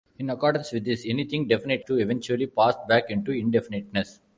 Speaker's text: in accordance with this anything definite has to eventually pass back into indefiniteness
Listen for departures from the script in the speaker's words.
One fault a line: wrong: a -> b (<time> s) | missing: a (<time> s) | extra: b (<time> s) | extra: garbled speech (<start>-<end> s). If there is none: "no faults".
missing: has (1.9 s)